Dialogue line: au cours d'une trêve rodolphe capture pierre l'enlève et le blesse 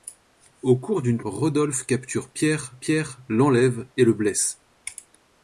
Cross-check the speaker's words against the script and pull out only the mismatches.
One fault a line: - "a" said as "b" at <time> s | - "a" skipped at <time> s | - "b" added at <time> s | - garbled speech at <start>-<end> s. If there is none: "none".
- "trêve" skipped at 1.2 s
- "pierre" added at 2.8 s